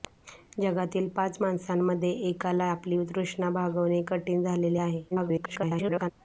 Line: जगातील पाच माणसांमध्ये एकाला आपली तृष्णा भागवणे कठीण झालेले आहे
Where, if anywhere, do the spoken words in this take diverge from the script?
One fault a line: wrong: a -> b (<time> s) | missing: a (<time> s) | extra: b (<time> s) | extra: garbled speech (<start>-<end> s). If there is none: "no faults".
extra: garbled speech (5.1-6.1 s)